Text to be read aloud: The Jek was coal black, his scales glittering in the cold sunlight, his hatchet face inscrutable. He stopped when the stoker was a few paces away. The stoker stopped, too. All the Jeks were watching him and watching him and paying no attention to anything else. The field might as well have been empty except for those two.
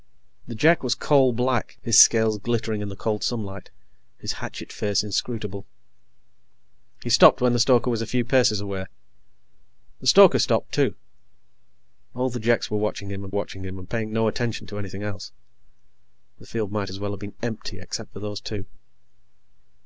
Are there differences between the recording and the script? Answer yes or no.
no